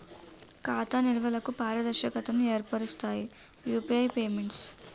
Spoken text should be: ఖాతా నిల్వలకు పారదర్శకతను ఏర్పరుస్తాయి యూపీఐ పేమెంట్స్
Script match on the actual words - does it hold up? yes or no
yes